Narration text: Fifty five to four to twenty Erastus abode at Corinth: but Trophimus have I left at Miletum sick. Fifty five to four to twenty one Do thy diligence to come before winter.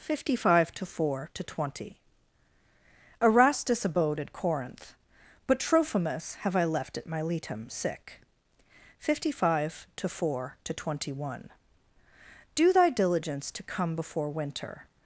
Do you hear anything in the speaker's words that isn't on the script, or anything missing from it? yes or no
no